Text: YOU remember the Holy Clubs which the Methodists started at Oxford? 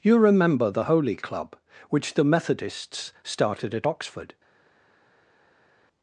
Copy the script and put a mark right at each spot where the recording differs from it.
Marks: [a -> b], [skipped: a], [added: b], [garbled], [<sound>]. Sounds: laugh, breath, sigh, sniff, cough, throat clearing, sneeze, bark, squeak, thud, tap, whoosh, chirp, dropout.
YOU remember the Holy [Clubs -> Club] which the Methodists started at Oxford?